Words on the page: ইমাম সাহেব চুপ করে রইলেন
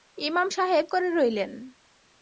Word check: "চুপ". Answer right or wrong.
wrong